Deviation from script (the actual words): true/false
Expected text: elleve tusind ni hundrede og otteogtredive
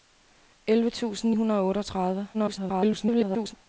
true